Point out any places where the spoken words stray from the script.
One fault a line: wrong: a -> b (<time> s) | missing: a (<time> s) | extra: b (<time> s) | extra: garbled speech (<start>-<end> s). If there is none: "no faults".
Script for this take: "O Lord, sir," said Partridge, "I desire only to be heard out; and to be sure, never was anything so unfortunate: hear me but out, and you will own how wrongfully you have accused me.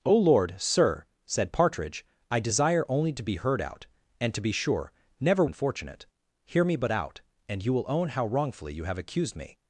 missing: was anything so (5.5 s)